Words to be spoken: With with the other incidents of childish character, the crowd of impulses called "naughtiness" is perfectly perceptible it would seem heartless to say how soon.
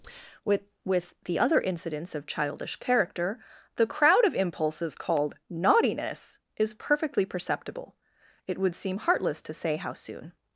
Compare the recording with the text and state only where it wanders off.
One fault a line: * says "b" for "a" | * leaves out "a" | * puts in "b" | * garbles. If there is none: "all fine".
all fine